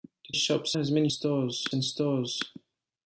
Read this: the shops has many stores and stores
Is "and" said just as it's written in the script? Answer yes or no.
yes